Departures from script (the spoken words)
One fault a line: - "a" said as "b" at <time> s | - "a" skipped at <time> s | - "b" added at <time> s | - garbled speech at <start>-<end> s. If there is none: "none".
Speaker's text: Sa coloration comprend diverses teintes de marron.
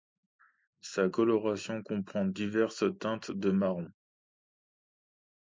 none